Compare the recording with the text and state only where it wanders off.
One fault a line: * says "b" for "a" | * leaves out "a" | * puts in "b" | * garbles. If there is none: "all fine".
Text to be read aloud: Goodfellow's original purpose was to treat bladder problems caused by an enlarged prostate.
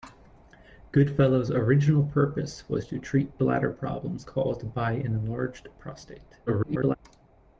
* garbles